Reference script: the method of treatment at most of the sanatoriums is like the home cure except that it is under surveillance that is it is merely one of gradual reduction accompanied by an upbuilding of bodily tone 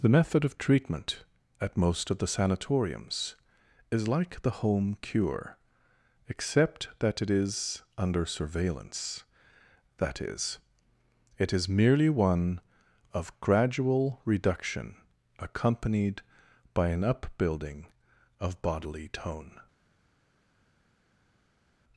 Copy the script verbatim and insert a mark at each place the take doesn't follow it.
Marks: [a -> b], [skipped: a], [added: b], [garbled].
the method of treatment at most of the sanatoriums is like the home cure except that it is under surveillance that is it is merely one of gradual reduction accompanied by an upbuilding of bodily tone